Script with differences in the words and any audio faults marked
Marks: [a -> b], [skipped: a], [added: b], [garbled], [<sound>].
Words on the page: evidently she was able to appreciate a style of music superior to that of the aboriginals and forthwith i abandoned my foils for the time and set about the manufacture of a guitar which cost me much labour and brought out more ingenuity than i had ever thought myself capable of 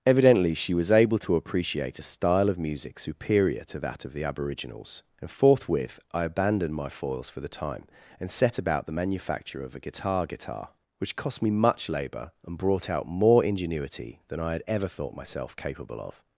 evidently she was able to appreciate a style of music superior to that of the aboriginals and forthwith i abandoned my foils for the time and set about the manufacture of a guitar [added: guitar] which cost me much labour and brought out more ingenuity than i had ever thought myself capable of